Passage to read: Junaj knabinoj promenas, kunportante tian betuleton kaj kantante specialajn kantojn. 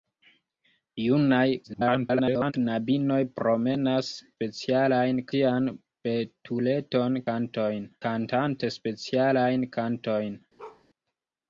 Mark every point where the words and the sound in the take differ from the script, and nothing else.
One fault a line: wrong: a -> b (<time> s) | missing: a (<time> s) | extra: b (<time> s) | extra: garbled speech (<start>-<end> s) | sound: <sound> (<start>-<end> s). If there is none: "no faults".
extra: garbled speech (1.6-2.5 s)
wrong: kunportante -> specialajn (4.4 s)
wrong: kaj -> kantojn (7.3 s)
sound: bark (10.6-10.8 s)